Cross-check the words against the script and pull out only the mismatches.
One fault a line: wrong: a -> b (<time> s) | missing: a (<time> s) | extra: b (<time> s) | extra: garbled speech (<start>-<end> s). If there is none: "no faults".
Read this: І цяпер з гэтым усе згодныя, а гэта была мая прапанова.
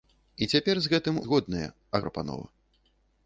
missing: усе (1.2 s)
missing: гэта была мая (2.0 s)